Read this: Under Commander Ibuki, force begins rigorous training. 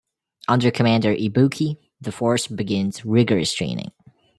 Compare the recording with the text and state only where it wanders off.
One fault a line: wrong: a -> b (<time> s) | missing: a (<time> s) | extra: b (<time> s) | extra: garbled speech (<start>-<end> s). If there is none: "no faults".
extra: the (2.0 s)